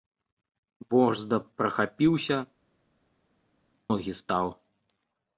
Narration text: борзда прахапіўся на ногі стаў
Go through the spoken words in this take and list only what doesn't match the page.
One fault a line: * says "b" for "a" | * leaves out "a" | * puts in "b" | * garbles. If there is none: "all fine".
* leaves out "на"